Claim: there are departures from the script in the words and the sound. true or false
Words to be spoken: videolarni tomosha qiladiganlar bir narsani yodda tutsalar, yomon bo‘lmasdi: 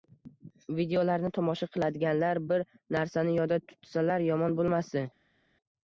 false